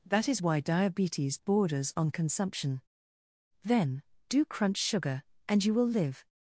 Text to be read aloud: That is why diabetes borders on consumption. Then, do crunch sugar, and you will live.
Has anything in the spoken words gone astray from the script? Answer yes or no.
no